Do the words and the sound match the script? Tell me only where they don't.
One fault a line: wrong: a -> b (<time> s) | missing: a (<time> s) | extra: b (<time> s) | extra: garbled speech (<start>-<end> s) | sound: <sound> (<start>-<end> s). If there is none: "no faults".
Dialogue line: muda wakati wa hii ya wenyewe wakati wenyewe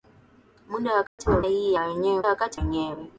sound: dropout (1.1-1.2 s)